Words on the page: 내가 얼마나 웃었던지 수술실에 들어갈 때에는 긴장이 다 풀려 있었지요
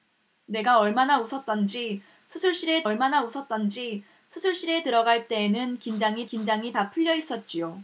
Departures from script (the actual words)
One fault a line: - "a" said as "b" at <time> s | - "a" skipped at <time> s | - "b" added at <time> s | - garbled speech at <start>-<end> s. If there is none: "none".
- "얼마나 웃었던지 수술실에" added at 2.8 s
- "긴장이" added at 6.2 s